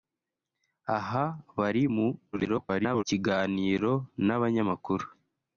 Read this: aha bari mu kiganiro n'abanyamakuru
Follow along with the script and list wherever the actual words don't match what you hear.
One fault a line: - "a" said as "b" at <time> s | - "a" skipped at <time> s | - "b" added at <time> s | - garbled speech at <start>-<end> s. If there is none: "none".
- garbled speech at 2.3-3.0 s